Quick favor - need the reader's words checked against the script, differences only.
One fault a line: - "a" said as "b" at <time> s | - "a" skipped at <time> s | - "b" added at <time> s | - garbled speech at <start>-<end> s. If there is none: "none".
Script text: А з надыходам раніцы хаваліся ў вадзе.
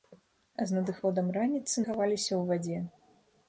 none